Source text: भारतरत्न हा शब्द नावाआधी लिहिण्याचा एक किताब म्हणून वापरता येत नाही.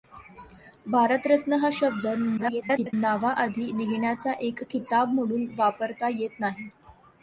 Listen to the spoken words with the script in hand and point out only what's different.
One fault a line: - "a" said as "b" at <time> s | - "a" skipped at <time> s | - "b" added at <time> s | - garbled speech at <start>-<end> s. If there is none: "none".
- garbled speech at 2.4-2.9 s